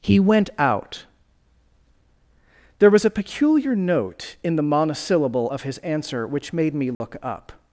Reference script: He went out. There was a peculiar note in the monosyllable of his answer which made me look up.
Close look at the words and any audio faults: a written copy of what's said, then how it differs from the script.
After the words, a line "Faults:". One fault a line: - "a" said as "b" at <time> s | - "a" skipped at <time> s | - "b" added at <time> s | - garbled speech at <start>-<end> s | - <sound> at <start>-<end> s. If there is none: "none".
He went out. There was a peculiar note in the monosyllable of his answer which made me look up.
Faults:
- dropout at 6.9-7.0 s